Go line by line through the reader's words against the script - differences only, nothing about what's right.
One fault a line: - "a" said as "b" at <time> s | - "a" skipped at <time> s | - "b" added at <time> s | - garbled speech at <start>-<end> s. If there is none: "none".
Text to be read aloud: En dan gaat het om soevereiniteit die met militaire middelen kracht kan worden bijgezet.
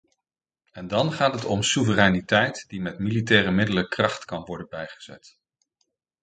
none